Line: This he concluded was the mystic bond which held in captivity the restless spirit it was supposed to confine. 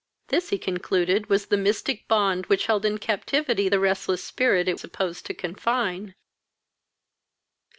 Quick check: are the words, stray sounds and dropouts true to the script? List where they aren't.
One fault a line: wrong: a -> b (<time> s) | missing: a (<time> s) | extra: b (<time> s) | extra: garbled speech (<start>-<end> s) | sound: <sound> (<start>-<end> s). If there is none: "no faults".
missing: was (4.8 s)